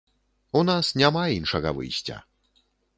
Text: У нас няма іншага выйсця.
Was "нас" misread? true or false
false